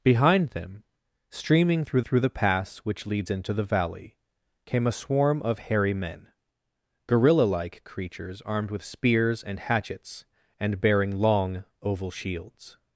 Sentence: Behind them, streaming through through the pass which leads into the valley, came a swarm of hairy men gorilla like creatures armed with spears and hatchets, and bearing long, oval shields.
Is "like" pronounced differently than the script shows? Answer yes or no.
no